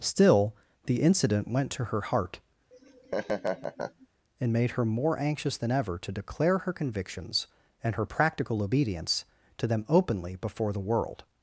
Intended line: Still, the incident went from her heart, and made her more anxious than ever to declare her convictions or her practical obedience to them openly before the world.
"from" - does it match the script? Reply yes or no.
no